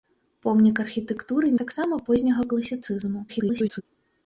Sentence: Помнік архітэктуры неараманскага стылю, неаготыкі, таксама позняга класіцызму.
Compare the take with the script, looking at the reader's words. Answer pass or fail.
fail